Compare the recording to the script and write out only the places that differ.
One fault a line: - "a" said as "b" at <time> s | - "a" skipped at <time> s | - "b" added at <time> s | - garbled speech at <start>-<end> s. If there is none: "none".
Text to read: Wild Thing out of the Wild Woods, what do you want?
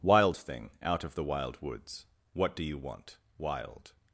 - "Wild" added at 3.4 s